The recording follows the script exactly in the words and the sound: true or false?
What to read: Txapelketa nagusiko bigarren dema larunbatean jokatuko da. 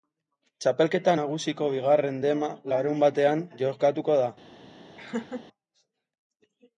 false